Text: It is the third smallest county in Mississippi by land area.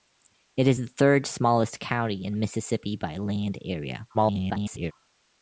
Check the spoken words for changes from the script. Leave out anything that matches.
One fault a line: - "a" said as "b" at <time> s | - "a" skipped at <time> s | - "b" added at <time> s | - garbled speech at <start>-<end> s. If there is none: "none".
- garbled speech at 4.1-4.9 s